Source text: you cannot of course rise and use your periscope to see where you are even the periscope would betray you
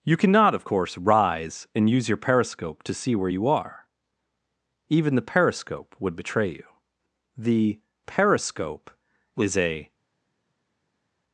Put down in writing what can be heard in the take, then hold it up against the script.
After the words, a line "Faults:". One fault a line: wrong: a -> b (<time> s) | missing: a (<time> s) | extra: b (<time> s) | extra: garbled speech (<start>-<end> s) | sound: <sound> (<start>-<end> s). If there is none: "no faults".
you cannot of course rise and use your periscope to see where you are even the periscope would betray you the periscope is a
Faults:
extra: the periscope is a (7.4 s)